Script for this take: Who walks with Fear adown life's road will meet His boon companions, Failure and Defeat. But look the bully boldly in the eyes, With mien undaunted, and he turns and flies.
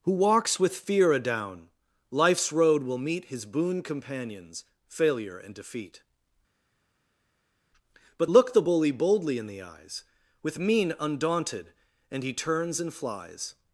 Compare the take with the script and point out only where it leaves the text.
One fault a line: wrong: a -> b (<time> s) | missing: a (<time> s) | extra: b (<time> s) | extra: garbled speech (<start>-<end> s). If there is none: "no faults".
no faults